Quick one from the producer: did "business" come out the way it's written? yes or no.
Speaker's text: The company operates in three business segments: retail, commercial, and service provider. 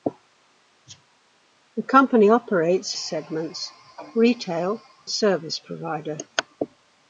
no